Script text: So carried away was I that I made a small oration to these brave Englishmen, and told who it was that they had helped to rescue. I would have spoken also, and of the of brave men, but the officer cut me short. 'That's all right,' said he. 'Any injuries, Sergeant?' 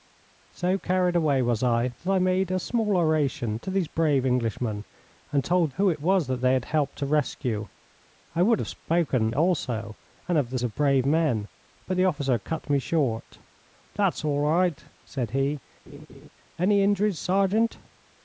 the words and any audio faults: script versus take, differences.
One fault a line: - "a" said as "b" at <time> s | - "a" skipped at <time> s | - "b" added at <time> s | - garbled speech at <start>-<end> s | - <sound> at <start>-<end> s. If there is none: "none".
- laugh at 15.9-16.3 s